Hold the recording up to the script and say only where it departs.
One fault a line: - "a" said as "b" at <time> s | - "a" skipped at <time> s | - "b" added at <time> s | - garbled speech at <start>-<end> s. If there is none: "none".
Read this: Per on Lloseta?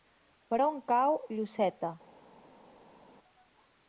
- "cau" added at 0.9 s